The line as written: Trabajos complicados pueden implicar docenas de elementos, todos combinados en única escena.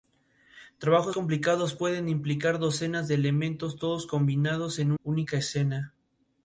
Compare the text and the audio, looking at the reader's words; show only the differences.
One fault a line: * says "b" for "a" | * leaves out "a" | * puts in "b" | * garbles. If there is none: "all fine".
all fine